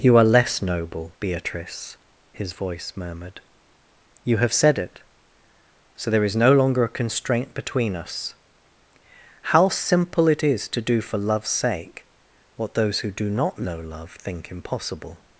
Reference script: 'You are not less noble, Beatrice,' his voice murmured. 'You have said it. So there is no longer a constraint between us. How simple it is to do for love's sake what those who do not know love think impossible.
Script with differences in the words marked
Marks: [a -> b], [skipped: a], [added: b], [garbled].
'You are [skipped: not] less noble, Beatrice,' his voice murmured. 'You have said it. So there is no longer a constraint between us. How simple it is to do for love's sake what those who do not know love think impossible.